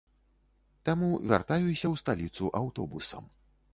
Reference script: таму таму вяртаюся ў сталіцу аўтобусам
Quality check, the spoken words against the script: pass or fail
fail